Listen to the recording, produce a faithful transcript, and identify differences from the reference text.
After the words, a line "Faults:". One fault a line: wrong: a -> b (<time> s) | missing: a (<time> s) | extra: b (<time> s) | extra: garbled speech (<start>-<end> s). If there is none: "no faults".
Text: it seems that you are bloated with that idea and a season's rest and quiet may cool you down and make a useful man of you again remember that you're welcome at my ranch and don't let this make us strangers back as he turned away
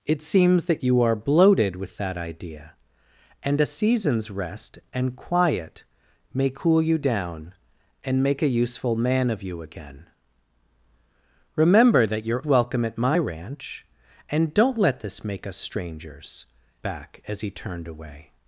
it seems that you are bloated with that idea and a season's rest and quiet may cool you down and make a useful man of you again remember that you're welcome at my ranch and don't let this make us strangers back as he turned away
Faults:
no faults